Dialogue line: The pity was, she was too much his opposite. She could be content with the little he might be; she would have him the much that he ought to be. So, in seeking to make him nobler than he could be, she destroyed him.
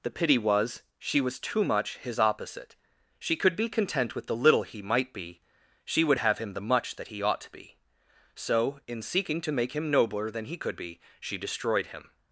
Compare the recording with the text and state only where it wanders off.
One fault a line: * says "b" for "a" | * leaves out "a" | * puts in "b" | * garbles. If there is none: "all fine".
all fine